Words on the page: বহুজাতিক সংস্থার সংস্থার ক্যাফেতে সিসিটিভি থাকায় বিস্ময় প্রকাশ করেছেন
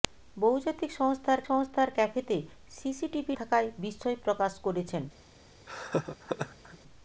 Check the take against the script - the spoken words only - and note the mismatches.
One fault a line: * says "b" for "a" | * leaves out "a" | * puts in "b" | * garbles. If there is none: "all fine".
all fine